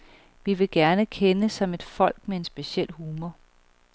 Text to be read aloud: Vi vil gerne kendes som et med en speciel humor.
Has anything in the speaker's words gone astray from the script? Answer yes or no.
yes